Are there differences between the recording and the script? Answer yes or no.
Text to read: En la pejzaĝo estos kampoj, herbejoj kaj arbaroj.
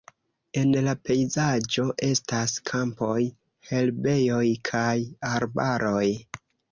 yes